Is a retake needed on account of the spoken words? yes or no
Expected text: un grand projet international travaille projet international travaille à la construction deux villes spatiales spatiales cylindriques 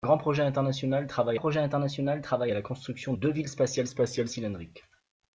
no